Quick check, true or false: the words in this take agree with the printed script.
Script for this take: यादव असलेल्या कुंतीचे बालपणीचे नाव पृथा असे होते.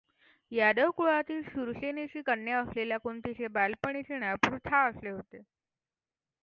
false